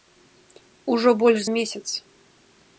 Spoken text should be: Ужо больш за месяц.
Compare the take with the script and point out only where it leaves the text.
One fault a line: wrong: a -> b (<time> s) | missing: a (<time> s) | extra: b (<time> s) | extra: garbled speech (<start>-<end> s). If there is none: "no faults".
missing: за (1.4 s)